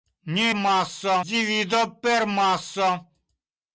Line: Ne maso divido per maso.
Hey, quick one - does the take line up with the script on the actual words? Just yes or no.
yes